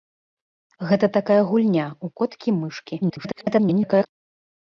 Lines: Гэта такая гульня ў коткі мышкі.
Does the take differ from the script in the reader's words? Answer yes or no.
yes